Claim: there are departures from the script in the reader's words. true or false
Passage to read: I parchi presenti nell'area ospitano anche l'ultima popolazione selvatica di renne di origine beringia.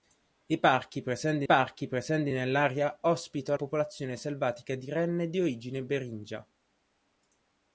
true